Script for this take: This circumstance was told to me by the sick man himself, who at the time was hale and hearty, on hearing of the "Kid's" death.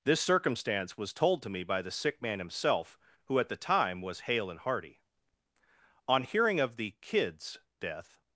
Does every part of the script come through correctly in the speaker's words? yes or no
yes